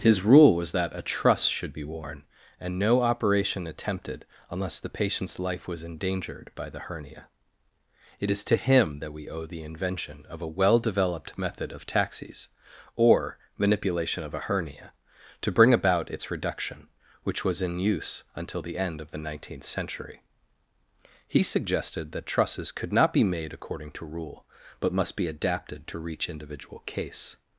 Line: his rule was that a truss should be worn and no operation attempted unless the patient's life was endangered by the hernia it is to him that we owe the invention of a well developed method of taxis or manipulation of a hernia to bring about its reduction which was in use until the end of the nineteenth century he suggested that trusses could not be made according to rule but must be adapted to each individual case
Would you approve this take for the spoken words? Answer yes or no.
no